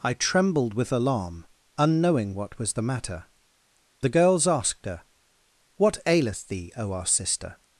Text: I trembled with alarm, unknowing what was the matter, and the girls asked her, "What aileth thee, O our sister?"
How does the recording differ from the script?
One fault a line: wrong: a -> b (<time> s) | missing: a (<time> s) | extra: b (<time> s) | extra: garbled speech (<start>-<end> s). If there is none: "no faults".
missing: and (3.3 s)